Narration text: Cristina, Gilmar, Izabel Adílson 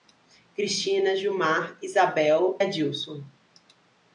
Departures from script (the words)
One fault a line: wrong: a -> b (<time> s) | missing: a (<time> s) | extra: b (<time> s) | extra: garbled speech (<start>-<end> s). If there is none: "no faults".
no faults